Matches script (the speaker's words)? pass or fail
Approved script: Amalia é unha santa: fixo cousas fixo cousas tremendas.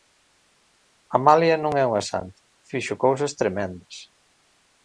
fail